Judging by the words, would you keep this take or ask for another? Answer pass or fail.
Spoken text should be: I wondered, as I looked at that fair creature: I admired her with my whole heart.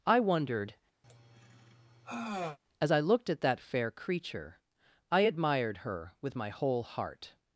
pass